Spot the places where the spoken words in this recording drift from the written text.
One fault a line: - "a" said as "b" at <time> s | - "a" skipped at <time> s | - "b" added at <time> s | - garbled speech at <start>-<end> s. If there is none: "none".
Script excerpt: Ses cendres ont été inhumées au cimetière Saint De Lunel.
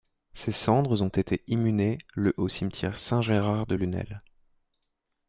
- "le" added at 2.1 s
- "Gérard" added at 3.2 s